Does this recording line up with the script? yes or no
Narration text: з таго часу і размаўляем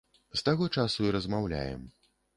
yes